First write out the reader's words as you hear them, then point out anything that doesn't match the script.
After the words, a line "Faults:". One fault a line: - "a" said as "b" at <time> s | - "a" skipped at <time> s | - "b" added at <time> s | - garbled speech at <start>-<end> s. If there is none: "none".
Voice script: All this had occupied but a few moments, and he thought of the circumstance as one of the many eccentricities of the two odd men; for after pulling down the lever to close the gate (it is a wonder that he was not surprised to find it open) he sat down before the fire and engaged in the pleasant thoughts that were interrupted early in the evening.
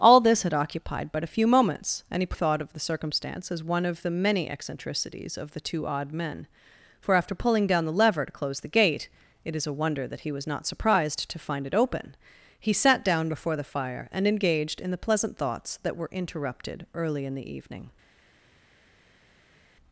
All this had occupied but a few moments, and he thought of the circumstance as one of the many eccentricities of the two odd men; for after pulling down the lever to close the gate (it is a wonder that he was not surprised to find it open) he sat down before the fire and engaged in the pleasant thoughts that were interrupted early in the evening.
Faults:
none